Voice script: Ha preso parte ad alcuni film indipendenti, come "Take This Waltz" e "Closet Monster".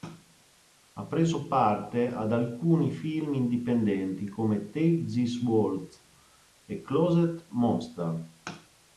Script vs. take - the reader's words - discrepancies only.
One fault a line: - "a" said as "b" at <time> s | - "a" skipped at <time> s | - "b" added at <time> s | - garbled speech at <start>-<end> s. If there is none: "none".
none